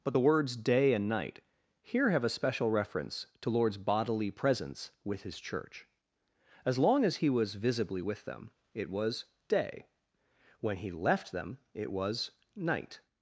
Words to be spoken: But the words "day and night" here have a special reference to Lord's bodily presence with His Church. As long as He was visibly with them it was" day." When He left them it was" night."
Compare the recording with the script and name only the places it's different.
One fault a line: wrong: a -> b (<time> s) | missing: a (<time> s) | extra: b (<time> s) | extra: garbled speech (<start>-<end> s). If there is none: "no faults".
no faults